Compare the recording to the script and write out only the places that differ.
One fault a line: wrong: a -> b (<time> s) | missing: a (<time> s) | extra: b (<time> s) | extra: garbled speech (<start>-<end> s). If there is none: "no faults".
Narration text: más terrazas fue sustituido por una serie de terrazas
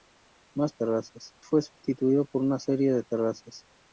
no faults